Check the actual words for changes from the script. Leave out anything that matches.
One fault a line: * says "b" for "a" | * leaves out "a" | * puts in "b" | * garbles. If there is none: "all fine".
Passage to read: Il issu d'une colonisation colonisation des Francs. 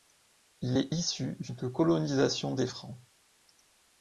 * puts in "est"
* leaves out "colonisation"